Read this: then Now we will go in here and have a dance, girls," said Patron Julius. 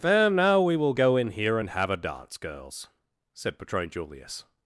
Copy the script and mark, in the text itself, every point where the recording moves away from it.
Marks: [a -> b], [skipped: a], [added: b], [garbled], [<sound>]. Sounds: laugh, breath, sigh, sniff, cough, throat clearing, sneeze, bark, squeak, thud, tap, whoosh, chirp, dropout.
then Now we will go in here and have a dance, girls," said Patron Julius.